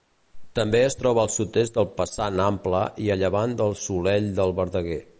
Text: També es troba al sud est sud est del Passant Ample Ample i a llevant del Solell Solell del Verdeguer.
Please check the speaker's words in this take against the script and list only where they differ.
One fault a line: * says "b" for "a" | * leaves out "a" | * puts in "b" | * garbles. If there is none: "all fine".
* leaves out "sud est"
* leaves out "Ample"
* leaves out "Solell"